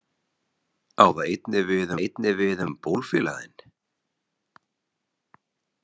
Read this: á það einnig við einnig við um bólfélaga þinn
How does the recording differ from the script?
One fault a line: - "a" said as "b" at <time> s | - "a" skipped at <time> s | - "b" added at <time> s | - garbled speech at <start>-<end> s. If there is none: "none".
none